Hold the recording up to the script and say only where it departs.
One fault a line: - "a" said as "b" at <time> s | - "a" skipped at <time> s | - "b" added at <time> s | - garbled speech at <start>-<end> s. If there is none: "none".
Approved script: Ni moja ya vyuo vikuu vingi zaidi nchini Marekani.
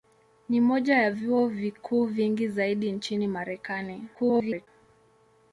- garbled speech at 4.1-4.7 s